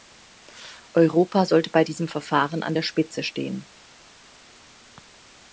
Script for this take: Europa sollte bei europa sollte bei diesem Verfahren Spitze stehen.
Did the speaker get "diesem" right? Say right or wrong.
wrong